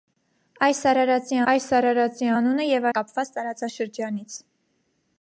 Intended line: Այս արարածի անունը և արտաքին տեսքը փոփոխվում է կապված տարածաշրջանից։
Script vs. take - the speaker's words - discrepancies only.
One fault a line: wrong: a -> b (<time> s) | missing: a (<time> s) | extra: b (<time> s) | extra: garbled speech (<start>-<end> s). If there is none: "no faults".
extra: այս արարածի (1.5 s)
missing: արտաքին տեսքը փոփոխվում (2.9 s)